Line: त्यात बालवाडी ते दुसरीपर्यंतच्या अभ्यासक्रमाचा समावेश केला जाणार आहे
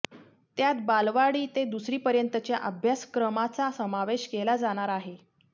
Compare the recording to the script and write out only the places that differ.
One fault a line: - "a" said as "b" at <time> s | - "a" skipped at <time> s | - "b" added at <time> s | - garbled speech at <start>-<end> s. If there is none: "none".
none